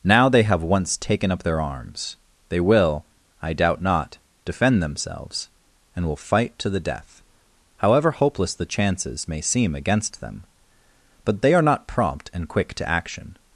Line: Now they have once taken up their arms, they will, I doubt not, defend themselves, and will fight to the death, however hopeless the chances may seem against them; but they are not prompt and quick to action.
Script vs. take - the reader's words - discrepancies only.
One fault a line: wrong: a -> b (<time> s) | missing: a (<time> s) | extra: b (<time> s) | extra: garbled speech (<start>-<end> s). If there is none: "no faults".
no faults